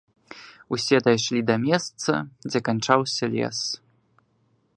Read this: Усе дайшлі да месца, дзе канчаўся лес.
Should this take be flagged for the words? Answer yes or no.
no